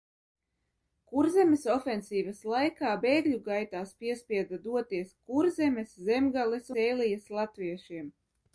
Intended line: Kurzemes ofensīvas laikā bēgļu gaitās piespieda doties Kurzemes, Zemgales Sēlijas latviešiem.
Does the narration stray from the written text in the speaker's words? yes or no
no